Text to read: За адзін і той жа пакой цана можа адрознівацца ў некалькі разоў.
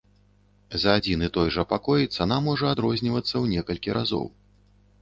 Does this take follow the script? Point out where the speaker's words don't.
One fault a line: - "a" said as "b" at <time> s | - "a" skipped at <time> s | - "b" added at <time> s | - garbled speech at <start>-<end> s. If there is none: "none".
none